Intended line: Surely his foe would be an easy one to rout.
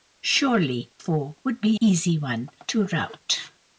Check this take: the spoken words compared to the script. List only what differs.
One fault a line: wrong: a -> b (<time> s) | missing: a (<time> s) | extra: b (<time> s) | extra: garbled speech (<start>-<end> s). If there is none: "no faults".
missing: his (0.9 s)
missing: an (1.8 s)